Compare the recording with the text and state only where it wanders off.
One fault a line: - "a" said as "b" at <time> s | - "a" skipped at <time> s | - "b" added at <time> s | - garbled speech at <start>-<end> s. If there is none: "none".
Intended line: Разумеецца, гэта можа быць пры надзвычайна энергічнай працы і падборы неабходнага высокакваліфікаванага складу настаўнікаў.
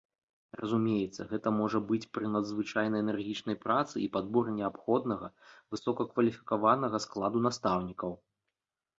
none